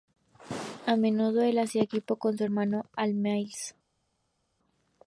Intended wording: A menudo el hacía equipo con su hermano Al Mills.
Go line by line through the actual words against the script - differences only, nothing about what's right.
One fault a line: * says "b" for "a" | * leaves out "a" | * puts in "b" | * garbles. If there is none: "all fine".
all fine